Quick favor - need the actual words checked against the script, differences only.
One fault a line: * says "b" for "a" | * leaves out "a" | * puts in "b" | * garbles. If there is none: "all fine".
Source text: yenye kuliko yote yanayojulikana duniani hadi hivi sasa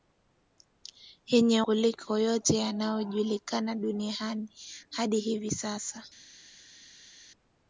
all fine